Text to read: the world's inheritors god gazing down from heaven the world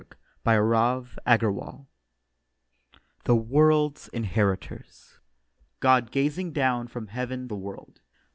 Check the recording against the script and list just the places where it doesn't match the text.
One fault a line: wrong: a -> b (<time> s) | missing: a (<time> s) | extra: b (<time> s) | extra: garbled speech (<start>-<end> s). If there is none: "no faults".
no faults